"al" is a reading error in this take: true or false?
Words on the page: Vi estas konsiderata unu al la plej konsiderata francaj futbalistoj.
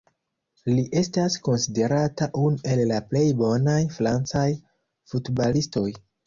true